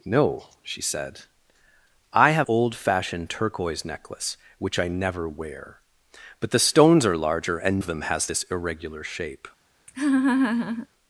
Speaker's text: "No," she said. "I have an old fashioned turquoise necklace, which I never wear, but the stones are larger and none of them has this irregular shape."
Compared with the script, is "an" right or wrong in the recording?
wrong